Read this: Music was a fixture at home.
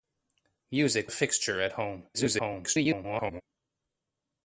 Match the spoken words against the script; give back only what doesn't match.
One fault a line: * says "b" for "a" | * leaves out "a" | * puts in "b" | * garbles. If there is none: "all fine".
* leaves out "was"
* garbles